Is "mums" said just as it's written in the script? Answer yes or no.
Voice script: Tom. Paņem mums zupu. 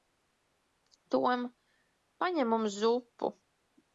yes